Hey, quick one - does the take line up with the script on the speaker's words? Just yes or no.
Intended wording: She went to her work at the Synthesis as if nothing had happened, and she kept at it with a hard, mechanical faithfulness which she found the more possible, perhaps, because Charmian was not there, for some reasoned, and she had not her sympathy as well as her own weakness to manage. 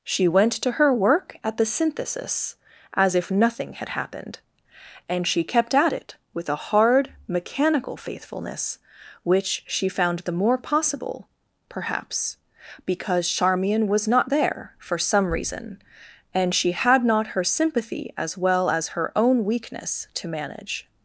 no